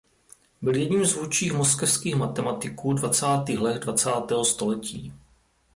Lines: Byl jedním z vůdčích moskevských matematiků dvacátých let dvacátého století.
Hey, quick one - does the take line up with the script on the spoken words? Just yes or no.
yes